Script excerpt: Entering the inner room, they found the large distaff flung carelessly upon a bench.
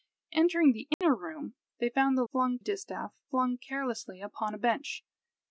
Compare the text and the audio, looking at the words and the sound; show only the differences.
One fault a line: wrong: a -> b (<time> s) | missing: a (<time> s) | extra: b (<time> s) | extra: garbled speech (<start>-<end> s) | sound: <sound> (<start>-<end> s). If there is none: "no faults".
sound: dropout (0.9-1.0 s)
wrong: large -> flung (2.3 s)